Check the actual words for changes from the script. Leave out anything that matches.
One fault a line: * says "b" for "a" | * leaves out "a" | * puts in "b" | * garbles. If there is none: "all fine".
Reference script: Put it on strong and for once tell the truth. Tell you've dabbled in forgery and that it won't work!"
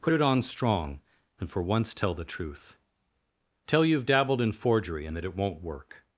all fine